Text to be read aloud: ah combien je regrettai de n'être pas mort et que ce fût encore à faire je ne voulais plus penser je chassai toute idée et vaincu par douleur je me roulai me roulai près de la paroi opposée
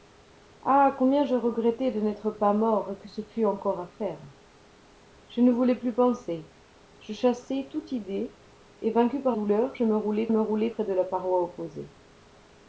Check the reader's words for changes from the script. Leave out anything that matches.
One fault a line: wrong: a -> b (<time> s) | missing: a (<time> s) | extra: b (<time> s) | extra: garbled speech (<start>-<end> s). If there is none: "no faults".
no faults